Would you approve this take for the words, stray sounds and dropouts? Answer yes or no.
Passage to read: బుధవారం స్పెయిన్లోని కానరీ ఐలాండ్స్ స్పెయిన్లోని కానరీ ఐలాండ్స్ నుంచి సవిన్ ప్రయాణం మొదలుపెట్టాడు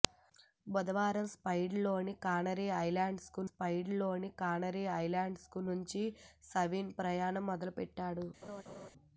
no